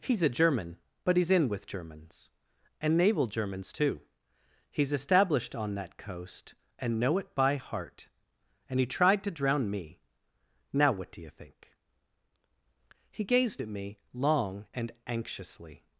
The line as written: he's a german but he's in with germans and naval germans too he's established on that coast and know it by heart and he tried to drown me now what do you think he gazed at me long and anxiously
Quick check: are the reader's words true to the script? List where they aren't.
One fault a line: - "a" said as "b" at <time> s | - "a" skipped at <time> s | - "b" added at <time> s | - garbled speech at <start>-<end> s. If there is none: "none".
none